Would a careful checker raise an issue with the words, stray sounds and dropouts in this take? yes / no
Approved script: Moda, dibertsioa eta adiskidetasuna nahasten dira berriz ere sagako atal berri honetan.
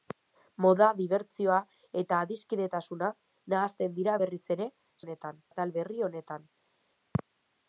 yes